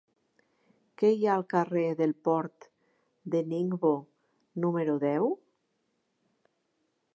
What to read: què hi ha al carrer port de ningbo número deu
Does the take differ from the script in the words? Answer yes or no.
yes